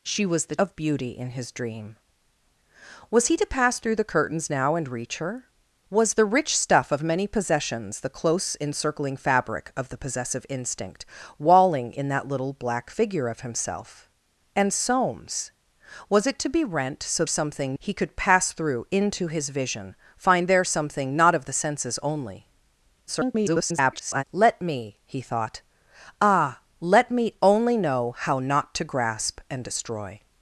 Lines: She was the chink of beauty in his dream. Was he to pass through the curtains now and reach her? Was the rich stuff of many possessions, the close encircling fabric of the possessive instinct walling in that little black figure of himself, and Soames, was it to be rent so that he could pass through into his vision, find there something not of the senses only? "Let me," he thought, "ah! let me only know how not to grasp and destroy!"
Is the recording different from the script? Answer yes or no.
yes